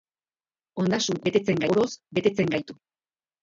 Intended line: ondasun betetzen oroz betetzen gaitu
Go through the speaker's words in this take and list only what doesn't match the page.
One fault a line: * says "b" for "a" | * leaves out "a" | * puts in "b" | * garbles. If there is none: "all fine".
all fine